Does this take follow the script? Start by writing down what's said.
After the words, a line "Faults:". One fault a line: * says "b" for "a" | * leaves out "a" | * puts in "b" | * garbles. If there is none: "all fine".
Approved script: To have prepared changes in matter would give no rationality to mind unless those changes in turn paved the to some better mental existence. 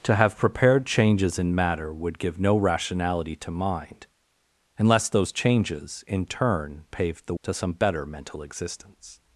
To have prepared changes in matter would give no rationality to mind unless those changes in turn paved the to some better mental existence.
Faults:
all fine